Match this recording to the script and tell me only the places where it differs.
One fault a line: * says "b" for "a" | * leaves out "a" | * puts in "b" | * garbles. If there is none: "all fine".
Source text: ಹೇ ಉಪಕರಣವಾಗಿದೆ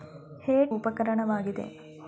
all fine